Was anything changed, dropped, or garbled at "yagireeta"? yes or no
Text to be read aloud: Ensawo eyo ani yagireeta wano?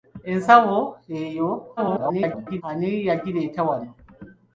no